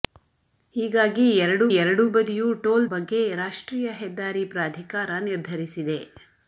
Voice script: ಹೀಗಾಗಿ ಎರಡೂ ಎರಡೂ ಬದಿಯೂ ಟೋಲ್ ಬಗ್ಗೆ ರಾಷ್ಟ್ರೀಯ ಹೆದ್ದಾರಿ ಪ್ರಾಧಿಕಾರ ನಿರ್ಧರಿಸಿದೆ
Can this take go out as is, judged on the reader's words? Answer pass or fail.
pass